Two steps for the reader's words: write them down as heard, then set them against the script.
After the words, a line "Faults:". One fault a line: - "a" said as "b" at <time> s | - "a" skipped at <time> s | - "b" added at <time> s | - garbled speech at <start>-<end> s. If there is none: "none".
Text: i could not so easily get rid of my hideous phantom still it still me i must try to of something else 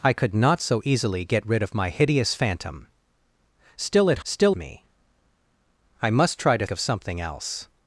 i could not so easily get rid of my hideous phantom still it still me i must try to of something else
Faults:
none